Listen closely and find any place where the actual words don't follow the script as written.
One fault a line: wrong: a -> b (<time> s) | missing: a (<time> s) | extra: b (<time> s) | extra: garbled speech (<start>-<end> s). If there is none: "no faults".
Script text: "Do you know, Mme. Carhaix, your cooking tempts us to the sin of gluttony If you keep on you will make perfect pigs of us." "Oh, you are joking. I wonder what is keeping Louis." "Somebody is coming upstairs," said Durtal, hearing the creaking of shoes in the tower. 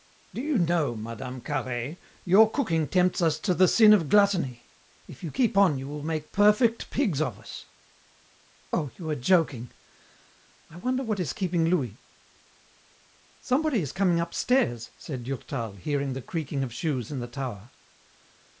no faults